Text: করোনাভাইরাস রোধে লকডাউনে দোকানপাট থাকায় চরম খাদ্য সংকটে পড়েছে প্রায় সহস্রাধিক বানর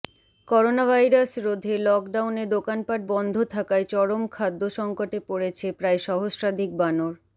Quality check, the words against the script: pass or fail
fail